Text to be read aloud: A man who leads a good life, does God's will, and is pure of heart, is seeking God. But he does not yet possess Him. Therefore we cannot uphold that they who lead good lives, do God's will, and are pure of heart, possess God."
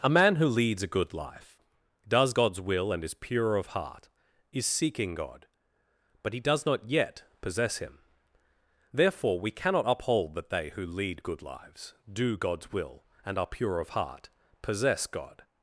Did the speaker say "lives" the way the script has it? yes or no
yes